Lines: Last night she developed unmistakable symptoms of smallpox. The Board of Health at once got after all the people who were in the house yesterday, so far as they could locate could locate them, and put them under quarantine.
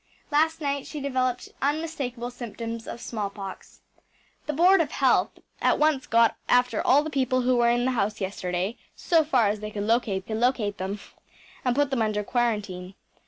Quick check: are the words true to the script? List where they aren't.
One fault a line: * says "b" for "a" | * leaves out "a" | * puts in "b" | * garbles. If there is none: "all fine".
all fine